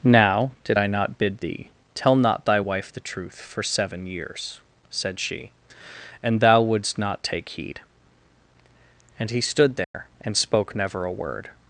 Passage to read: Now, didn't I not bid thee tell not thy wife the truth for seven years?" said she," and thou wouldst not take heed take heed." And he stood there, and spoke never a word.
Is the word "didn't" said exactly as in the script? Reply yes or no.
no